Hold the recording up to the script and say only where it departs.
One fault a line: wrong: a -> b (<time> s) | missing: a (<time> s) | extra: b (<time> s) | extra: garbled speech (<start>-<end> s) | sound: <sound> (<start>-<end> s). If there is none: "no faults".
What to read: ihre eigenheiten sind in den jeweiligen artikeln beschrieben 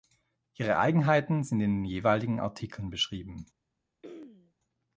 sound: throat clearing (4.0-4.5 s)